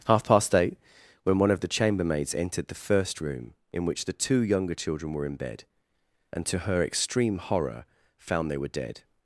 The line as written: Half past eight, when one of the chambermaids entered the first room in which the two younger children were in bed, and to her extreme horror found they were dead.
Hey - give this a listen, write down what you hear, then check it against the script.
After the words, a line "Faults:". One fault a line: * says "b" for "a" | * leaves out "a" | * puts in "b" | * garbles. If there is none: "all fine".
Half past eight, when one of the chambermaids entered the first room in which the two younger children were in bed, and to her extreme horror found they were dead.
Faults:
all fine